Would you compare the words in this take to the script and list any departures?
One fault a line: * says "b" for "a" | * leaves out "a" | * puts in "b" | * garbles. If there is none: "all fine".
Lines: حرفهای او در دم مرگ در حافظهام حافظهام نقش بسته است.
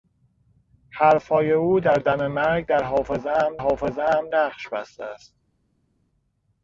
all fine